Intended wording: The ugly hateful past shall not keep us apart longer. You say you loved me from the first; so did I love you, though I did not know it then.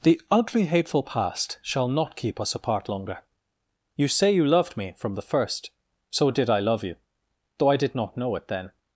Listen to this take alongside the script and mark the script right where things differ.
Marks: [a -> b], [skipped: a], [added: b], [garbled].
The ugly hateful past shall not keep us apart longer. You say you loved me from the first; so did I love you, though I did not know it then.